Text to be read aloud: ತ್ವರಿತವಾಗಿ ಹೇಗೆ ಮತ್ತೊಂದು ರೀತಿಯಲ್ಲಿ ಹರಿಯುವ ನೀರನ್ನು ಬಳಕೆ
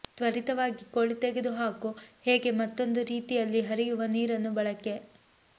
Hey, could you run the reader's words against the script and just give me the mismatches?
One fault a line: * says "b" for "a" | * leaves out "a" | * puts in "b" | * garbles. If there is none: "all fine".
* puts in "ಕೋಳಿ ತೆಗೆದುಹಾಕು"